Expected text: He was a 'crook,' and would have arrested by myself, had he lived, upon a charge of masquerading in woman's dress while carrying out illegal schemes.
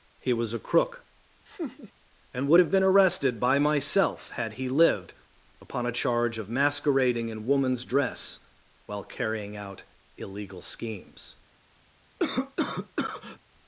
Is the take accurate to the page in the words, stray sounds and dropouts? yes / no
no